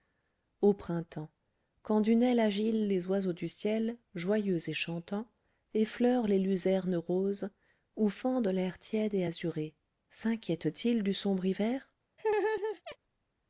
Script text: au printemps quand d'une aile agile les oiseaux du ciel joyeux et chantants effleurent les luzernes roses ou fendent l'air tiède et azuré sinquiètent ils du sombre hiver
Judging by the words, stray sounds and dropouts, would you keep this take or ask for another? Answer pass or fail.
fail